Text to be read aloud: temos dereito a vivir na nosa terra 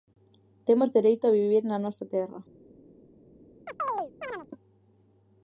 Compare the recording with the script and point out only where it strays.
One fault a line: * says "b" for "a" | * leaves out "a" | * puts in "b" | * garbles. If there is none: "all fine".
all fine